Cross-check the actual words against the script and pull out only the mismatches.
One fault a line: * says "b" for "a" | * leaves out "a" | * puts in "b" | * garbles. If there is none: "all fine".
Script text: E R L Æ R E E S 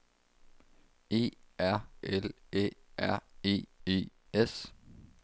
all fine